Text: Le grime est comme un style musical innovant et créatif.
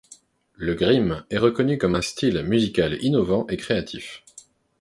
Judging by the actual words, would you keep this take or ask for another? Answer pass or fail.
fail